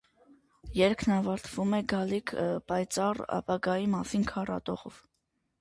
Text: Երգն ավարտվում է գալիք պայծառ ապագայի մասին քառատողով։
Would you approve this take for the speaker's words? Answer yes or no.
yes